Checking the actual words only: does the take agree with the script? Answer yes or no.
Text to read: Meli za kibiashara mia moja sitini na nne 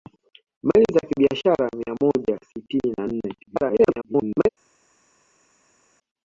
no